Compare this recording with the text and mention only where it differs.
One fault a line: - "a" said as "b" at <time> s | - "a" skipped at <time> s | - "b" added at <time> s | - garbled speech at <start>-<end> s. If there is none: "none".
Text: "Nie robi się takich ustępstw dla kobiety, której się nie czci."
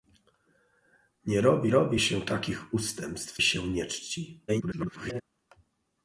- "robi" added at 1.7 s
- "dla kobiety której" skipped at 3.4 s
- garbled speech at 4.5-5.2 s